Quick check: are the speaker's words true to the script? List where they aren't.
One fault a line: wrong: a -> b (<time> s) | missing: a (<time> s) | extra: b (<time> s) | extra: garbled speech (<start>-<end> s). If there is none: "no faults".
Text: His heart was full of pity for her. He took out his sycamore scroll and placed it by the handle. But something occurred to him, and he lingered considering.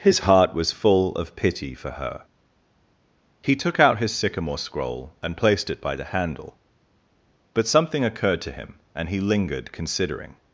no faults